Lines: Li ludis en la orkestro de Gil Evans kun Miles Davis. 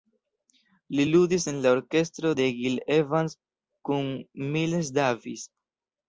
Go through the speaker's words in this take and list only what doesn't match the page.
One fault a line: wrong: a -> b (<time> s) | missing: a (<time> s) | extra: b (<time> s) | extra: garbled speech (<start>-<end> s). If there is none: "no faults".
no faults